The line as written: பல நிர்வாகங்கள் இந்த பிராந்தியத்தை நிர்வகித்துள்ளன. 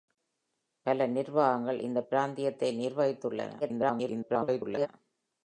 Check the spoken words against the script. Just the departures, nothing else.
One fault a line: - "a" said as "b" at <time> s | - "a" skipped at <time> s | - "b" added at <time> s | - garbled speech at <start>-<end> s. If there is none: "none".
- garbled speech at 3.6-4.9 s